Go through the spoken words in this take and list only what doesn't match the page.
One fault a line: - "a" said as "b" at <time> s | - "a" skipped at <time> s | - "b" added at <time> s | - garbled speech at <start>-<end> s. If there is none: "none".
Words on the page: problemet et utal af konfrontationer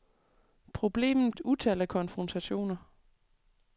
none